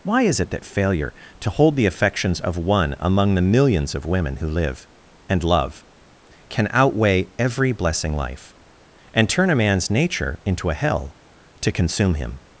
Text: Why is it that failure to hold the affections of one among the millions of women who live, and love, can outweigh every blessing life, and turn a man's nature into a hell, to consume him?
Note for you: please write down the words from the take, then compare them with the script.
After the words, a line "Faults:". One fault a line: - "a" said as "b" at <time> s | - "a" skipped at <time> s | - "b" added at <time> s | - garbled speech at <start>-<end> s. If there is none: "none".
Why is it that failure to hold the affections of one among the millions of women who live, and love, can outweigh every blessing life, and turn a man's nature into a hell, to consume him?
Faults:
none